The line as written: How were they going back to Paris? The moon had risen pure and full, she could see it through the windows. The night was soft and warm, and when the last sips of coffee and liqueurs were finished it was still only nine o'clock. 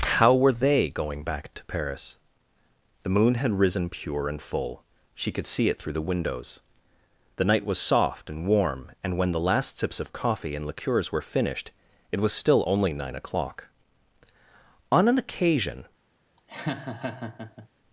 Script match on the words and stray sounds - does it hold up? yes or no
no